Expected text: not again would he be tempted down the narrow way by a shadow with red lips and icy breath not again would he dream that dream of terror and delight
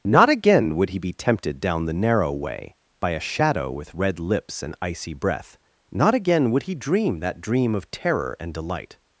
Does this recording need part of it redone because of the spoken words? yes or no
no